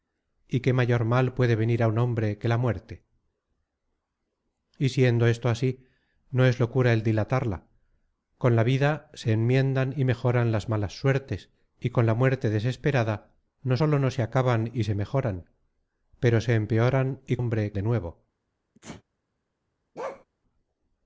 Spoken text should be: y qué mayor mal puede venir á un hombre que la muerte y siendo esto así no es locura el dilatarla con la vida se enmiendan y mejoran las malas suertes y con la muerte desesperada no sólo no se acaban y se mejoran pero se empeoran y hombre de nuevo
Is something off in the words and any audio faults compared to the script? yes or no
yes